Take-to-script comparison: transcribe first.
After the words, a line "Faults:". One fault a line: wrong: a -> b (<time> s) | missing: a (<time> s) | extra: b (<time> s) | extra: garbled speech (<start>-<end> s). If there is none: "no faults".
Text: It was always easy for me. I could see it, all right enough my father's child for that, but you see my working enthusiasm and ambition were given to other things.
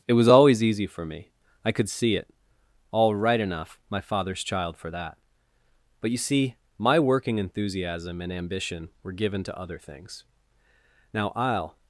It was always easy for me. I could see it, all right enough my father's child for that, but you see my working enthusiasm and ambition were given to other things. Now I'll
Faults:
extra: Now I'll (11.1 s)